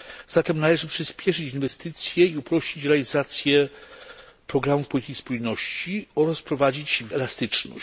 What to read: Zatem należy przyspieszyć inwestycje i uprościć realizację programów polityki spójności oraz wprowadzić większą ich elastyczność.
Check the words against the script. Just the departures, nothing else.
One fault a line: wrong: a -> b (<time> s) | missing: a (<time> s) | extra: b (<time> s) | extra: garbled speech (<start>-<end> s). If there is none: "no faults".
missing: większą ich (7.0 s)